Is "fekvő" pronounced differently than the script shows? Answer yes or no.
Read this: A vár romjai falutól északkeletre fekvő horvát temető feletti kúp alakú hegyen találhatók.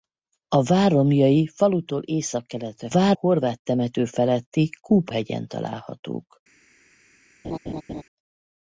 yes